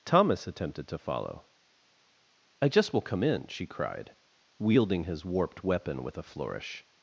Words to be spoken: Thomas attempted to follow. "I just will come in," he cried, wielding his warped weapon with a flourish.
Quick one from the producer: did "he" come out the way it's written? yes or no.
no